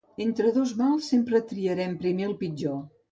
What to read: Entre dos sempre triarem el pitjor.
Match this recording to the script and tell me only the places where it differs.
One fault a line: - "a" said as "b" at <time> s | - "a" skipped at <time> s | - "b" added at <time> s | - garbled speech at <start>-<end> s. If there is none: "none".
- "mals" added at 0.8 s
- "primer" added at 2.0 s